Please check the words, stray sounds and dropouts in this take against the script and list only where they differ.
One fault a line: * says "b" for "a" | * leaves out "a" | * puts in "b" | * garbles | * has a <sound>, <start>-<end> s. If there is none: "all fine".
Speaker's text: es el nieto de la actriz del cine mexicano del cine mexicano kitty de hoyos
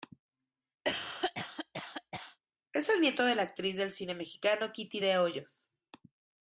* has a cough, 0.8-2.4 s
* leaves out "del cine mexicano"